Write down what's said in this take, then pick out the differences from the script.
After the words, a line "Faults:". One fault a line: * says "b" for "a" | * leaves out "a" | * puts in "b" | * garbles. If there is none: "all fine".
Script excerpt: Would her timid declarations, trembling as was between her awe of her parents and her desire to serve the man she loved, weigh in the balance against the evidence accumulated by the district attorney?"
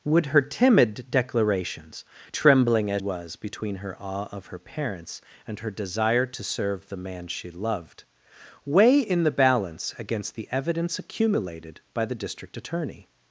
Would her timid declarations, trembling as was between her awe of her parents and her desire to serve the man she loved, weigh in the balance against the evidence accumulated by the district attorney?"
Faults:
all fine